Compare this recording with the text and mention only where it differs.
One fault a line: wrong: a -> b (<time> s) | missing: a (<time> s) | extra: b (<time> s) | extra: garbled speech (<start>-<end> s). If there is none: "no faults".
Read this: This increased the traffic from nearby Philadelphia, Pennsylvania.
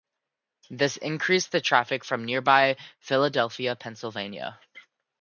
no faults